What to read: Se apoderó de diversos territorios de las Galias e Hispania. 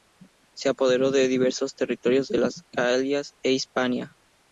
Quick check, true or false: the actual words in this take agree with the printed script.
true